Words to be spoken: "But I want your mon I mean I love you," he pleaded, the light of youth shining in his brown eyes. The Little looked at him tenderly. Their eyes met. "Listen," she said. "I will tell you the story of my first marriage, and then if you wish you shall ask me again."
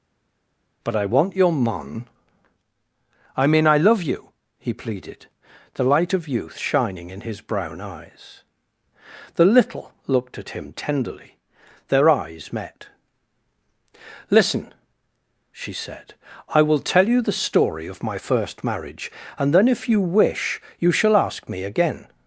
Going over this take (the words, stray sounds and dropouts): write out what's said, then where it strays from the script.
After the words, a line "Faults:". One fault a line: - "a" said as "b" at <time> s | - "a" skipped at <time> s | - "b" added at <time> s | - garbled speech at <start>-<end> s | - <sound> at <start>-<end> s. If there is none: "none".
"But I want your mon I mean I love you," he pleaded, the light of youth shining in his brown eyes. The Little looked at him tenderly. Their eyes met. "Listen," she said. "I will tell you the story of my first marriage, and then if you wish you shall ask me again."
Faults:
none